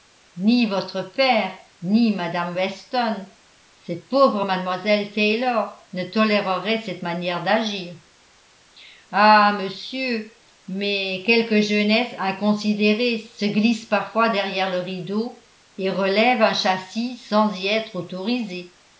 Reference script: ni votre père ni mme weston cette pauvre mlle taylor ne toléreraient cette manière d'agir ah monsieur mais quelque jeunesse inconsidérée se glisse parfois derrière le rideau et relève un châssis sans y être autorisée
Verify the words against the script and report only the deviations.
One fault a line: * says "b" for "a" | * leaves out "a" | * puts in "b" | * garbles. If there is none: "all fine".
all fine